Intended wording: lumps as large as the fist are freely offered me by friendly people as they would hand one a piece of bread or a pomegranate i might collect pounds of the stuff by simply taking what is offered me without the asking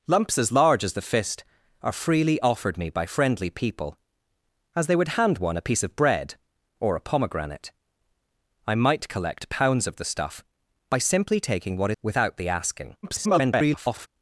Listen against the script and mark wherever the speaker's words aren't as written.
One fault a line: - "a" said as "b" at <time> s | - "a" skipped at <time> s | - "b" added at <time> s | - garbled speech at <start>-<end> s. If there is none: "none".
- "is offered me" skipped at 11.9 s
- garbled speech at 13.0-14.1 s